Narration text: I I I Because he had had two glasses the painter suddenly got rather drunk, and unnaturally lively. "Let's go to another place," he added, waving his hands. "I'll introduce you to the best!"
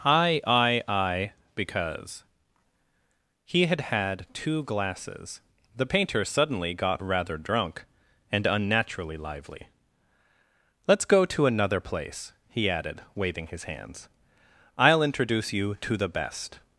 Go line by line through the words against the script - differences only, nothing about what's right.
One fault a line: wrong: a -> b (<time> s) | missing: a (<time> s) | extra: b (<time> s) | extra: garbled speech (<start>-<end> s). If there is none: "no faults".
no faults